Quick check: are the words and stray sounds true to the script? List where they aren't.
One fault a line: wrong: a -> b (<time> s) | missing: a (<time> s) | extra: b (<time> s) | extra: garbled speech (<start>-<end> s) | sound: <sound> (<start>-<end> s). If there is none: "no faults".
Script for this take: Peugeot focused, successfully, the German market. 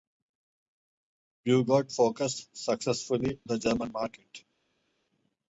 no faults